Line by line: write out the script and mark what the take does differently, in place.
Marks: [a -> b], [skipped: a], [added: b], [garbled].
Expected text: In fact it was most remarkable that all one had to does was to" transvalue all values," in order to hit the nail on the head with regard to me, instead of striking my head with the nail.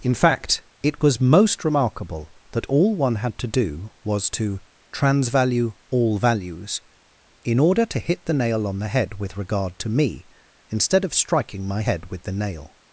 In fact it was most remarkable that all one had to [does -> do] was to" transvalue all values," in order to hit the nail on the head with regard to me, instead of striking my head with the nail.